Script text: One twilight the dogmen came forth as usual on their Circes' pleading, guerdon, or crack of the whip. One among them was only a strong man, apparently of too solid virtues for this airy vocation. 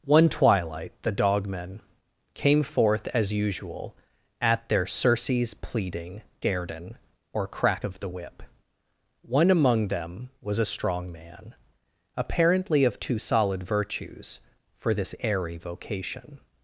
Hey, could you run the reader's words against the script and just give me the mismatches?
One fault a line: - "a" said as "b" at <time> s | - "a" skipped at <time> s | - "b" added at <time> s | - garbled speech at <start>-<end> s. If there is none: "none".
- "on" said as "at" at 4.4 s
- "only" skipped at 10.6 s